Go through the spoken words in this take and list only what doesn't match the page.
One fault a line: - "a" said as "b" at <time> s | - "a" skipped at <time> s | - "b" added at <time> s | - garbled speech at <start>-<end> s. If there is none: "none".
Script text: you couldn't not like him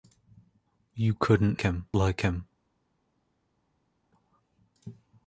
- "not" said as "him" at 1.6 s